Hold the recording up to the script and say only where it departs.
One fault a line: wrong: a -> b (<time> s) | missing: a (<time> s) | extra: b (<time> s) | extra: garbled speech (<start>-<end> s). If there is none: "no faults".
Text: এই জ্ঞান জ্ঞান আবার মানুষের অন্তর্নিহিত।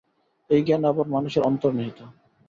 missing: জ্ঞান (0.8 s)